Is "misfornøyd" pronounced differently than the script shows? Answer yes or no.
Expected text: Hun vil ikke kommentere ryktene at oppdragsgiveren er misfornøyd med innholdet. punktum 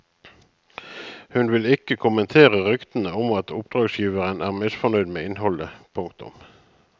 no